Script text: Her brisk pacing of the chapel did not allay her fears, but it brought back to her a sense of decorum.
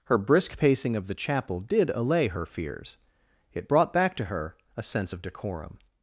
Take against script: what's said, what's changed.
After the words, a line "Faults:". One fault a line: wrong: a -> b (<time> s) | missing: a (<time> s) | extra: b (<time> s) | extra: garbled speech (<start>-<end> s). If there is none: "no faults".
Her brisk pacing of the chapel did allay her fears, it brought back to her a sense of decorum.
Faults:
missing: not (1.9 s)
missing: but (3.0 s)